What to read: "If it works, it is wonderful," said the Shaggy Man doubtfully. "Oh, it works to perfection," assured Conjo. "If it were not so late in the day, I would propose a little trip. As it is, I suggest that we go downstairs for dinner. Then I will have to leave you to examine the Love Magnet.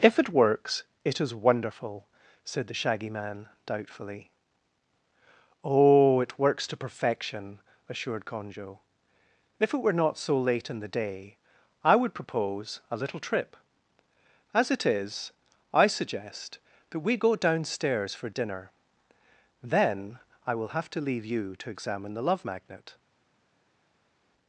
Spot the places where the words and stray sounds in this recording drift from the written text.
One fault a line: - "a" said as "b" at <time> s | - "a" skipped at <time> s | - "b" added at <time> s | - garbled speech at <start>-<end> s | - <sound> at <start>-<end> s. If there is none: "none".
none